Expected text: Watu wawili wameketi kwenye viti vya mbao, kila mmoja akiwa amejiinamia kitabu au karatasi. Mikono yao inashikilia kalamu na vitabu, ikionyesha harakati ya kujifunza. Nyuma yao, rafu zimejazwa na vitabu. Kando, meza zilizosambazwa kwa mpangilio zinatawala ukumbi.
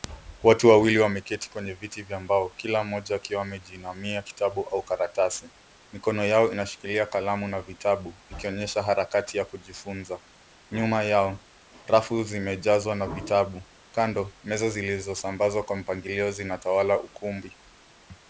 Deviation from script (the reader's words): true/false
false